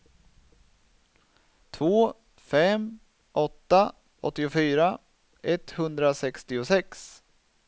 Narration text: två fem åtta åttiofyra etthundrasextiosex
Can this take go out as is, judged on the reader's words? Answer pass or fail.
pass